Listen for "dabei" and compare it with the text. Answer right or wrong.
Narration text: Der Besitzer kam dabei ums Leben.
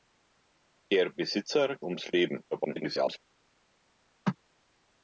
wrong